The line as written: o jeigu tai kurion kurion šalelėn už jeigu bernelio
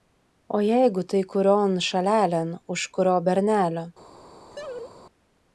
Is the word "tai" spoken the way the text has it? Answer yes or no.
yes